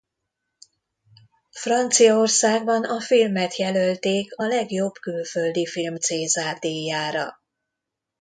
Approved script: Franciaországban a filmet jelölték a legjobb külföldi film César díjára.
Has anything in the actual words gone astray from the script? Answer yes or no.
no